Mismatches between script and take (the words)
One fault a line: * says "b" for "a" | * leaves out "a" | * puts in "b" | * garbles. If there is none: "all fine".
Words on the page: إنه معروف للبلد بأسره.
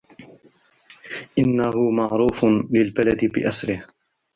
all fine